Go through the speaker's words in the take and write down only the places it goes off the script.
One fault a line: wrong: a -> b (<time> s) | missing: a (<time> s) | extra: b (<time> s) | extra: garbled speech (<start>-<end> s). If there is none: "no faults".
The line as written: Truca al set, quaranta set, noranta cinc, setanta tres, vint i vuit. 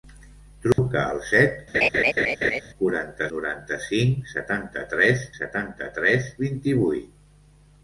missing: set (3.3 s)
extra: setanta tres (5.4 s)